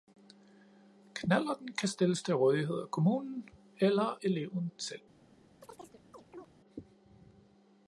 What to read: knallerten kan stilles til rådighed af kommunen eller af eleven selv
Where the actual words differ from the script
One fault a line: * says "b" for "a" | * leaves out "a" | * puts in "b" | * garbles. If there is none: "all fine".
* leaves out "af"